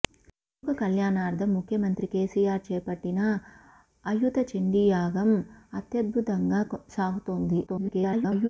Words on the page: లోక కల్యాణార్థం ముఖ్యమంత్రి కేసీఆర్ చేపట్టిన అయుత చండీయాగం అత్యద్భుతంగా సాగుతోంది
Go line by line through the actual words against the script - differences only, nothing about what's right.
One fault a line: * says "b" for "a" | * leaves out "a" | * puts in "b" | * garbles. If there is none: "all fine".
* garbles